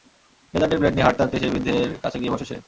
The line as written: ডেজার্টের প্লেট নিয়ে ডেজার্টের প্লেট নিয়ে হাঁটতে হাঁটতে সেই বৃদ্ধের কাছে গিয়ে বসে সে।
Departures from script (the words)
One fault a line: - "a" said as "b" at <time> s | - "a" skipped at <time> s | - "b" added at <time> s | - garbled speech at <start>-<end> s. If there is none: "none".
- "ডেজার্টের প্লেট নিয়ে" skipped at 1.1 s